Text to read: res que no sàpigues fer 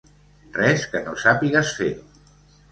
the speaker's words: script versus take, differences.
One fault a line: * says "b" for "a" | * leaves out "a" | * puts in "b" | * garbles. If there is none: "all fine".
all fine